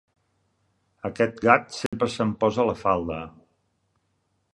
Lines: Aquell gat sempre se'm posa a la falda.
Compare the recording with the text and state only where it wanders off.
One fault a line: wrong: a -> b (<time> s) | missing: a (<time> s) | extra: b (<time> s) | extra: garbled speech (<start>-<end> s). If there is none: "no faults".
wrong: Aquell -> Aquest (1.1 s)